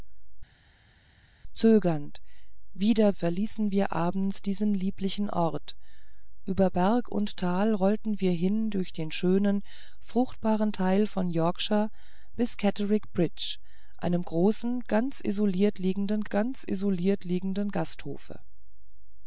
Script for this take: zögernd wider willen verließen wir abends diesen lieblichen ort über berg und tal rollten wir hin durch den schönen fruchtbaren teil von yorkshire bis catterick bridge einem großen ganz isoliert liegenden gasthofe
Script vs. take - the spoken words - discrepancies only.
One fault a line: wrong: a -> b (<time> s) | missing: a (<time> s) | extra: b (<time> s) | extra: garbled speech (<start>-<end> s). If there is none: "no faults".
missing: willen (3.2 s)
extra: ganz isoliert liegenden (16.3 s)